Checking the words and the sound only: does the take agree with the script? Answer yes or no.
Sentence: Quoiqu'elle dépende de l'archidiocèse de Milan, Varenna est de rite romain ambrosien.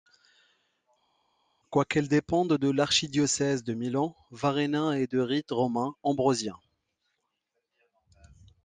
yes